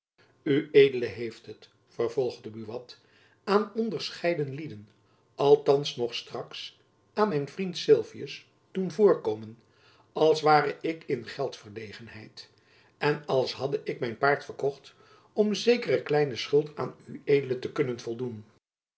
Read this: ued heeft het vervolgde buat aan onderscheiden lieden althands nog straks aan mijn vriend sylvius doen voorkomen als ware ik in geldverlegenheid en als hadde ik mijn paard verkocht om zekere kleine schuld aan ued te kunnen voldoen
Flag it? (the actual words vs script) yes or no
no